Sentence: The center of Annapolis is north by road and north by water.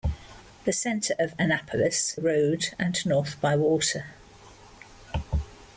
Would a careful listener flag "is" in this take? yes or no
yes